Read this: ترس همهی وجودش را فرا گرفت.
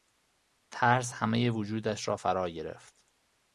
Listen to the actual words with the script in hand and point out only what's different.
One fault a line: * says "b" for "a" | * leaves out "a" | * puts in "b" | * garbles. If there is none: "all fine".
all fine